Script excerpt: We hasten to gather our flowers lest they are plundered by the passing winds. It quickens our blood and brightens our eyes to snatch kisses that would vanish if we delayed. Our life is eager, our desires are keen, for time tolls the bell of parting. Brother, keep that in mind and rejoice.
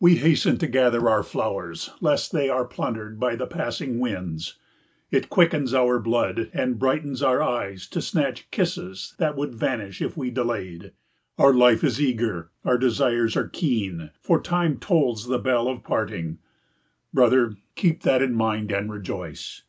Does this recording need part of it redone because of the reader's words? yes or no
no